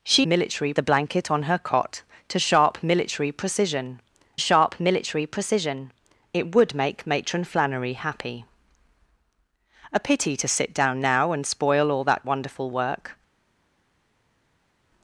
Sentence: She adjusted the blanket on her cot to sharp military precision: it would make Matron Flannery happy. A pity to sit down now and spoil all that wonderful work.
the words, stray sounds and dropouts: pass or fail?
fail